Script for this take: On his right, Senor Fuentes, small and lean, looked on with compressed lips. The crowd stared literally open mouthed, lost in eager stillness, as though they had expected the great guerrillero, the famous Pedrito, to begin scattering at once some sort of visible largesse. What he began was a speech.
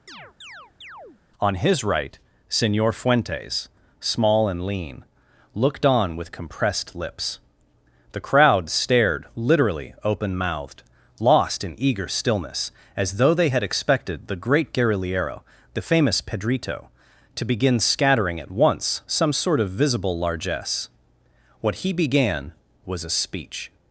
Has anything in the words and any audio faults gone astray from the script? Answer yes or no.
yes